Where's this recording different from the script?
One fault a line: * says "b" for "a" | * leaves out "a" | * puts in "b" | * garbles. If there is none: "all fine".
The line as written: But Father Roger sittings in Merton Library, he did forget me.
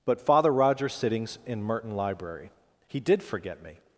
all fine